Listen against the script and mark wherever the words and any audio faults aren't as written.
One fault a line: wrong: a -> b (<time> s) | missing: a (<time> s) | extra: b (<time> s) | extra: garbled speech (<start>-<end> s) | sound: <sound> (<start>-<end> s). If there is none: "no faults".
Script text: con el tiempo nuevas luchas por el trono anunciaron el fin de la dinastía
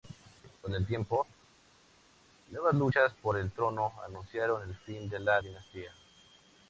no faults